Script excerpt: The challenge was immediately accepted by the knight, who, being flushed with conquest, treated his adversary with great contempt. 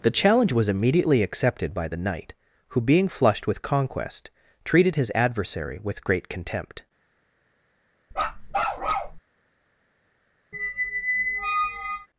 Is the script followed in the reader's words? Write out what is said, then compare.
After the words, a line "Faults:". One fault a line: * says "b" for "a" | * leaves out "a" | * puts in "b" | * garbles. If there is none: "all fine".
The challenge was immediately accepted by the knight, who, being flushed with conquest, treated his adversary with great contempt.
Faults:
all fine